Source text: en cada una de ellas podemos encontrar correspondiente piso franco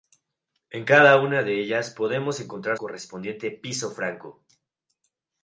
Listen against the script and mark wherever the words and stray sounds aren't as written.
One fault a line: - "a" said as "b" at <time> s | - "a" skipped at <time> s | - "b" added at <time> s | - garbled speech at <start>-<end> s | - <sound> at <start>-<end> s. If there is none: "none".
none